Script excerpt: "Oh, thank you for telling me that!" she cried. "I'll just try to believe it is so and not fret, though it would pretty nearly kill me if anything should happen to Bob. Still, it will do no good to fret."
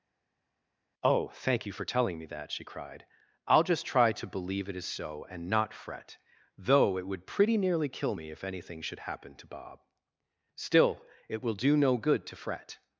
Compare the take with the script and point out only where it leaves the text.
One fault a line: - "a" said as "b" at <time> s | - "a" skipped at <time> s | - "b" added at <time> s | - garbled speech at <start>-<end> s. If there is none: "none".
none